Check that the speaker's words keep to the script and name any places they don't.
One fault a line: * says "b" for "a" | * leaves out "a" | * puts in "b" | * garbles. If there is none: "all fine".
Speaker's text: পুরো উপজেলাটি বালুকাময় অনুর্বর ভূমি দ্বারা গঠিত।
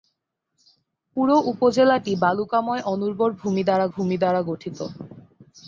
* puts in "ভূমি দ্বারা"